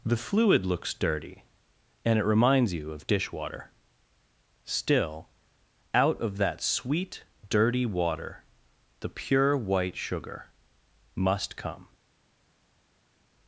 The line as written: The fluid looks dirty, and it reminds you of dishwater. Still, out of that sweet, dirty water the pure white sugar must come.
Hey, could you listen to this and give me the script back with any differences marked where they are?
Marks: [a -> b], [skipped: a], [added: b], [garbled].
The fluid looks dirty, and it reminds you of dishwater. Still, out of that sweet, dirty water the pure white sugar must come.